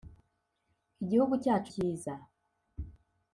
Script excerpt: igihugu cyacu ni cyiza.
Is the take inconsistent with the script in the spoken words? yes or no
yes